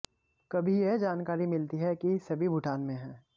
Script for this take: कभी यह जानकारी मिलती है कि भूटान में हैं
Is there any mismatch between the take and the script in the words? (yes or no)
yes